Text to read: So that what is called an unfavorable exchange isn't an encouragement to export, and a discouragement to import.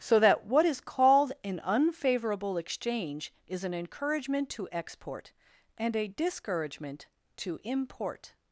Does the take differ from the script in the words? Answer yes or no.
yes